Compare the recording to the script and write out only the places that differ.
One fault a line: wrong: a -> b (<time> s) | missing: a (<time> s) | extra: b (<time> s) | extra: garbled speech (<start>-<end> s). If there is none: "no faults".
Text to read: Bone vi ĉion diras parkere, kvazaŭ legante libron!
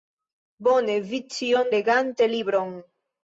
missing: diras parkere kvazaŭ (1.7 s)